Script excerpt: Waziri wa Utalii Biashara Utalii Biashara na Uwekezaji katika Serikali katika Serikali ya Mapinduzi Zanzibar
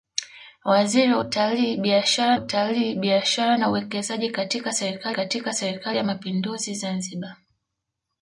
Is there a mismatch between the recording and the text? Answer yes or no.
no